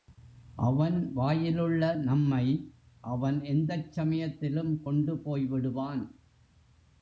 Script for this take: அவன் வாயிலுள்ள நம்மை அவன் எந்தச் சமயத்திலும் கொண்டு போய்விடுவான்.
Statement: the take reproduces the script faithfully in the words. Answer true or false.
true